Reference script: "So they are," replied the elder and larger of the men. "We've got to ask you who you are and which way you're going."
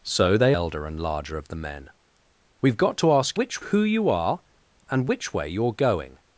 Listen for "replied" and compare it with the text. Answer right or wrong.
wrong